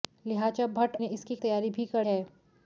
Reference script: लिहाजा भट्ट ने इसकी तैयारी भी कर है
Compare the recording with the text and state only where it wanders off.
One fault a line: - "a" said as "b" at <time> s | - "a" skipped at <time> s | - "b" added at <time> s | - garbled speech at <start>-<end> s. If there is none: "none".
none